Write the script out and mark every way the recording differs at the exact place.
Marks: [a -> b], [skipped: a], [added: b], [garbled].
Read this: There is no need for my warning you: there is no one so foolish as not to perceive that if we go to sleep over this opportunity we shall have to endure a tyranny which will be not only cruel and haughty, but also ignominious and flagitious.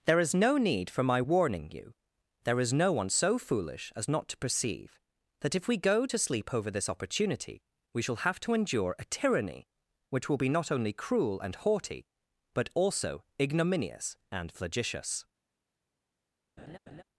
There is no need for my warning you: there is no one so foolish as not to perceive that if we go to sleep over this opportunity we shall have to endure a tyranny which will be not only cruel and haughty, but also ignominious and flagitious.